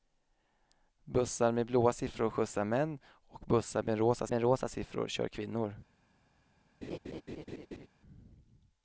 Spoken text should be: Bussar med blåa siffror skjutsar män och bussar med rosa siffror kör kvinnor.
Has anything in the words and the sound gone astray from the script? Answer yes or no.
yes